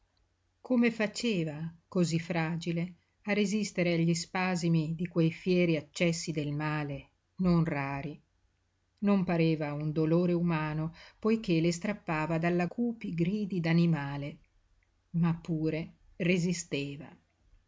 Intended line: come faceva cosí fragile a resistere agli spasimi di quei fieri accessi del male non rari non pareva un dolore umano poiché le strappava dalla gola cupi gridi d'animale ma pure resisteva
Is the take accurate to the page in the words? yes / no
no